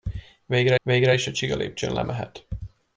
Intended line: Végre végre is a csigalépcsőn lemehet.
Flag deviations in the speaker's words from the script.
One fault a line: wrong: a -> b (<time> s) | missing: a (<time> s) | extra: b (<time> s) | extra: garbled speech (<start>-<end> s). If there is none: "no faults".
no faults